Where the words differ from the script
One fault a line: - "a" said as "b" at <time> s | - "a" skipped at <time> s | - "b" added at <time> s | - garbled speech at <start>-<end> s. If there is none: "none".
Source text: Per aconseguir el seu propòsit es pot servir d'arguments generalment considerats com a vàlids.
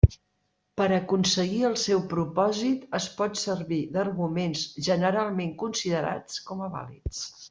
none